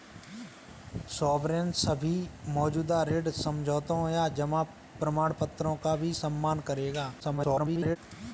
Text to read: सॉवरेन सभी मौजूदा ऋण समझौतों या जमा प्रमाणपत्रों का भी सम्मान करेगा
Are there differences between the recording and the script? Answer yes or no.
yes